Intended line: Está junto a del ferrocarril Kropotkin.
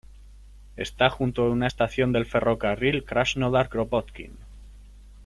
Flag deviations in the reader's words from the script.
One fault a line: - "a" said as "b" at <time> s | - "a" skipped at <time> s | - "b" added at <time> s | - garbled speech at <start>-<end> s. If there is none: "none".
- "una estación" added at 1.5 s
- "Krasnodar" added at 3.0 s